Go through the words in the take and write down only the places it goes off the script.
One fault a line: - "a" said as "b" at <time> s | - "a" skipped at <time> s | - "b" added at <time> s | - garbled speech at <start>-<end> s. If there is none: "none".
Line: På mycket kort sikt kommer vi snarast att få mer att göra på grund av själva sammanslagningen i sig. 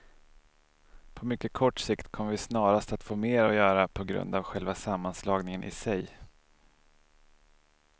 none